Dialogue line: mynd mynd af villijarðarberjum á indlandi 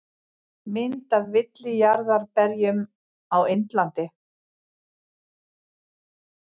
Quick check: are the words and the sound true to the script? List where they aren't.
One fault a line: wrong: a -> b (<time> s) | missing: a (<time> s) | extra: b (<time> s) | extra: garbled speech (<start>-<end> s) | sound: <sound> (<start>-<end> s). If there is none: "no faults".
missing: mynd (1.1 s)